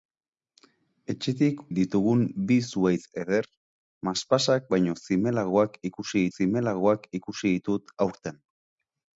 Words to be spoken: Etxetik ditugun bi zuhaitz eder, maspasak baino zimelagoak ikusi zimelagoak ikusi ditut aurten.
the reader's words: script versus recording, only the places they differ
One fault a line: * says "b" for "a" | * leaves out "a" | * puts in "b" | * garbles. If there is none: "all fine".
all fine